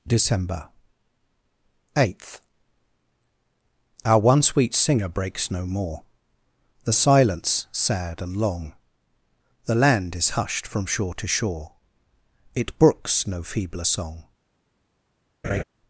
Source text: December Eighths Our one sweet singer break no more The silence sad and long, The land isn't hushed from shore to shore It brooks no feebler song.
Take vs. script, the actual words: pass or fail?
fail